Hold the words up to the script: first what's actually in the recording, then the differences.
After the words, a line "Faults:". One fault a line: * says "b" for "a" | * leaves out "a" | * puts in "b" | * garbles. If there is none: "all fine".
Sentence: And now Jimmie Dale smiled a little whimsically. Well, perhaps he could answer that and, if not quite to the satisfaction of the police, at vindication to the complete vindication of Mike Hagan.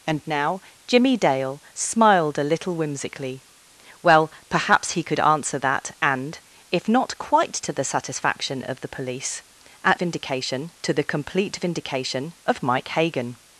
And now Jimmie Dale smiled a little whimsically. Well, perhaps he could answer that and, if not quite to the satisfaction of the police, at vindication to the complete vindication of Mike Hagan.
Faults:
all fine